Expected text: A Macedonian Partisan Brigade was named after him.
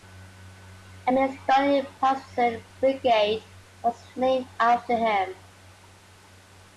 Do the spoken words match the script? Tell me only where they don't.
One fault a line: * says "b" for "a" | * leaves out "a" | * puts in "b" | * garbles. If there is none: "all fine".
all fine